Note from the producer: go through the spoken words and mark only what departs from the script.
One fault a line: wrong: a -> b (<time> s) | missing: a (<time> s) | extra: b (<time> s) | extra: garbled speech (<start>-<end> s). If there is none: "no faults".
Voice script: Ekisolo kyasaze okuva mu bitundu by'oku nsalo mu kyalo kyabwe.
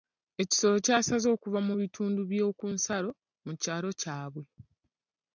no faults